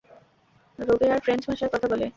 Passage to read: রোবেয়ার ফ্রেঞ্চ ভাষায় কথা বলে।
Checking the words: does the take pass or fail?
pass